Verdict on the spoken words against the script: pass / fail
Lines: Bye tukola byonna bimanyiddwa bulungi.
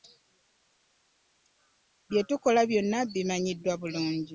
pass